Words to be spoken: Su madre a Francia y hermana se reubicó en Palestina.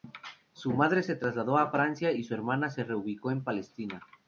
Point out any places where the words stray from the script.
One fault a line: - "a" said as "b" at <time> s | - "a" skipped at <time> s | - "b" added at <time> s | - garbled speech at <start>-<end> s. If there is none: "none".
- "se trasladó" added at 1.0 s
- "su" added at 2.2 s